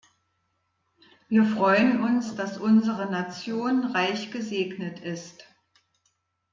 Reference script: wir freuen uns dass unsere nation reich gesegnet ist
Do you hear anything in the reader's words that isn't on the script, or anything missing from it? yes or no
no